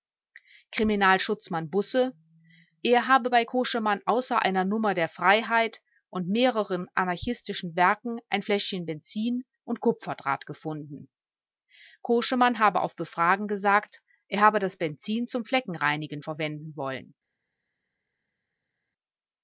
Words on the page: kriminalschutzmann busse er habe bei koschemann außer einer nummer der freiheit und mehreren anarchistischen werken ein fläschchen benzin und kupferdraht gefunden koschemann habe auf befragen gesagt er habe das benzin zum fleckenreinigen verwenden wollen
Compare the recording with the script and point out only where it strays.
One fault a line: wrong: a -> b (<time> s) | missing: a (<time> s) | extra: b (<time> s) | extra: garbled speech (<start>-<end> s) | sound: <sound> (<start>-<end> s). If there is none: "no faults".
no faults